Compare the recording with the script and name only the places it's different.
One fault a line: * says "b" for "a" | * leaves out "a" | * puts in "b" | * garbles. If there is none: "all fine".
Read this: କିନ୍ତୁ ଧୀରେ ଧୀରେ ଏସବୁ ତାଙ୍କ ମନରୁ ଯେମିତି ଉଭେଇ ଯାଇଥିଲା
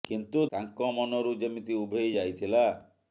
* leaves out "ଧୀରେ ଧୀରେ ଏସବୁ"